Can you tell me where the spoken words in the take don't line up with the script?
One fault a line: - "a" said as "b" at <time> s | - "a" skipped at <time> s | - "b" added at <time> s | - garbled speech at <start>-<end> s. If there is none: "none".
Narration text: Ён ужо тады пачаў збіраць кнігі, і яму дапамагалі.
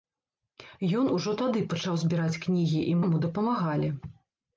none